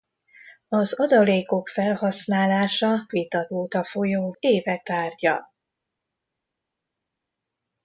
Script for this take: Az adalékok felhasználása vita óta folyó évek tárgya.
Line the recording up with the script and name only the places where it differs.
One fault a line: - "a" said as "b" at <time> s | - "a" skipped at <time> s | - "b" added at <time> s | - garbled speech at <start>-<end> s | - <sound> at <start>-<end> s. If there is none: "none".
none